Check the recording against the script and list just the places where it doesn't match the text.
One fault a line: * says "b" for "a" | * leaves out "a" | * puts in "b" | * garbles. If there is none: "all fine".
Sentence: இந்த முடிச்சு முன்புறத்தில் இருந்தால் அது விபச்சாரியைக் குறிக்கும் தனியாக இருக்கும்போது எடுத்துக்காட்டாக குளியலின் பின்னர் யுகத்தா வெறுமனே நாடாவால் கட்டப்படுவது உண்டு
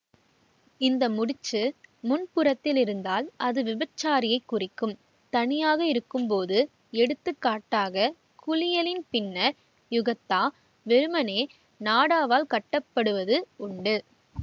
all fine